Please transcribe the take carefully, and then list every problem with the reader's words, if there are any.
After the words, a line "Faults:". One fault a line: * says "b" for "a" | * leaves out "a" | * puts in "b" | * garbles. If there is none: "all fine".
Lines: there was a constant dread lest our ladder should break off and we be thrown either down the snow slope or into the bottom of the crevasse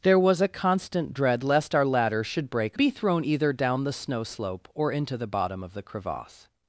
there was a constant dread lest our ladder should break be thrown either down the snow slope or into the bottom of the crevasse
Faults:
* leaves out "off and we"